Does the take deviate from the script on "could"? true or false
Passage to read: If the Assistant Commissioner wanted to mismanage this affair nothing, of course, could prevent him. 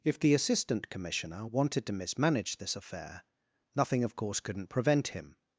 true